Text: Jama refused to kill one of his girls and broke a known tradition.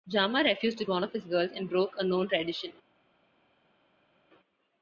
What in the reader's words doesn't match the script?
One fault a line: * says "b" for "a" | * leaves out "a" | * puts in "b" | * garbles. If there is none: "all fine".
* leaves out "kill"